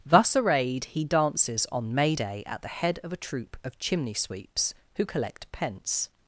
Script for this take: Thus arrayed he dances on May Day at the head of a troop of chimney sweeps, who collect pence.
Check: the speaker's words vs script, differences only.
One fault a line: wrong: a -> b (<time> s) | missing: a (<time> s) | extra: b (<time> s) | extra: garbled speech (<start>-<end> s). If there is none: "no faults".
no faults